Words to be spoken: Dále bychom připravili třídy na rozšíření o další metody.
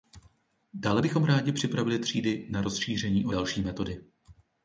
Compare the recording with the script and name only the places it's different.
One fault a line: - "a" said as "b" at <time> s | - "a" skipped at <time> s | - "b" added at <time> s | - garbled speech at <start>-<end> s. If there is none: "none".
- "rádi" added at 1.2 s